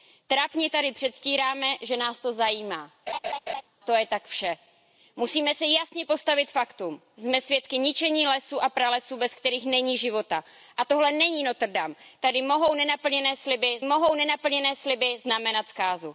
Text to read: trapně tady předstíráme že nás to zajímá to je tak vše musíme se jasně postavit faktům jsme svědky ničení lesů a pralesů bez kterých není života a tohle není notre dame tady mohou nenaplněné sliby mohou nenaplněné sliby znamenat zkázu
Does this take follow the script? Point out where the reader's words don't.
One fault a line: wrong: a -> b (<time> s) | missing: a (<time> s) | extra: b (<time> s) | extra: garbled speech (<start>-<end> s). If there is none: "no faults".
no faults